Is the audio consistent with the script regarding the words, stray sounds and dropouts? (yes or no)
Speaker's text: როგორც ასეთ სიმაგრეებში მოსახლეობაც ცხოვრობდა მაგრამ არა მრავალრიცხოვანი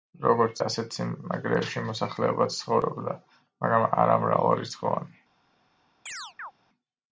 no